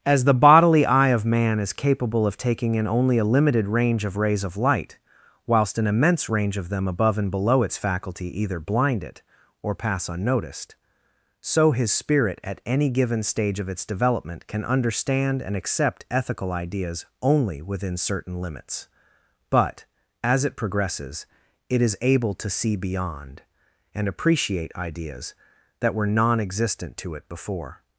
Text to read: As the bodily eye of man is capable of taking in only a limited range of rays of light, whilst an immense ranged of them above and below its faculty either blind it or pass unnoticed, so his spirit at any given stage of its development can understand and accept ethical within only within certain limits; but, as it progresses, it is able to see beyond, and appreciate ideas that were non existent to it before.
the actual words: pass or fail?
fail